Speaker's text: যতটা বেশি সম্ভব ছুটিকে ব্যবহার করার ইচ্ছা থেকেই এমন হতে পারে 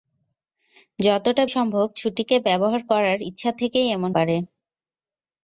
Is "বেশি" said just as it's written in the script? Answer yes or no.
no